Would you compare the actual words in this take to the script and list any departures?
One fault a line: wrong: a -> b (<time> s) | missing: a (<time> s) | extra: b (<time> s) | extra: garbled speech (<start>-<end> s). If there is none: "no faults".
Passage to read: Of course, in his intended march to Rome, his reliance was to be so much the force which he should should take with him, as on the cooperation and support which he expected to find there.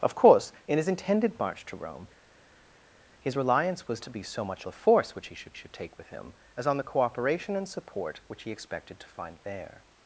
no faults